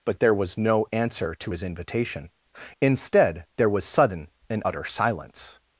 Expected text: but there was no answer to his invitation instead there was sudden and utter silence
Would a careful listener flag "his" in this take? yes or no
no